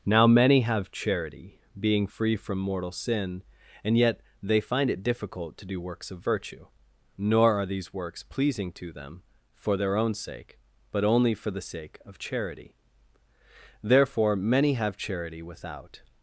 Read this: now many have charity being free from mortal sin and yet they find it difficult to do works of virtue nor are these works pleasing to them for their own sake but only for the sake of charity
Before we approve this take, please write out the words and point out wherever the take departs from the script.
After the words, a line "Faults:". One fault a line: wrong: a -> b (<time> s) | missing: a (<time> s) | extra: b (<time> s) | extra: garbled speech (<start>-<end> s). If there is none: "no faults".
now many have charity being free from mortal sin and yet they find it difficult to do works of virtue nor are these works pleasing to them for their own sake but only for the sake of charity therefore many have charity without
Faults:
extra: therefore many have charity without (13.8 s)